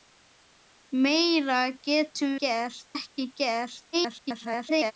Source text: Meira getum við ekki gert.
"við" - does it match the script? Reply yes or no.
no